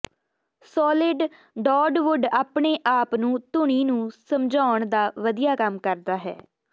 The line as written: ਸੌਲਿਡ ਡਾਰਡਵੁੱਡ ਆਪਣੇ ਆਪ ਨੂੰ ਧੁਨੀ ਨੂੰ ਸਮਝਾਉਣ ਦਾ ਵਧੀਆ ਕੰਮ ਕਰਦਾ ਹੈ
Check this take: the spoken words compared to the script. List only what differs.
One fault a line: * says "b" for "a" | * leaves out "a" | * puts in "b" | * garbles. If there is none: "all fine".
all fine